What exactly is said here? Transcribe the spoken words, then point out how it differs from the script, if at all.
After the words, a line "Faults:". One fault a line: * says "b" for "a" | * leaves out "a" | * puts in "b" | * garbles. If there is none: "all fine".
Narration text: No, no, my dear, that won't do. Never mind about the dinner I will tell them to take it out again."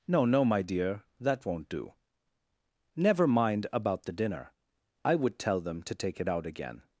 No, no, my dear, that won't do. Never mind about the dinner I would tell them to take it out again."
Faults:
* says "would" for "will"